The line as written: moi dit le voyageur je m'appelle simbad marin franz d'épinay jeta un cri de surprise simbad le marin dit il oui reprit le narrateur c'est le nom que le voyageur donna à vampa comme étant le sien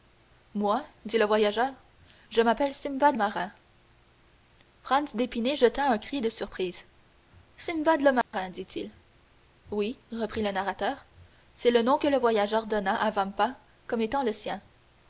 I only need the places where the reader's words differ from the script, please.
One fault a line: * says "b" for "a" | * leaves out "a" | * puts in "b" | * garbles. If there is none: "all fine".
all fine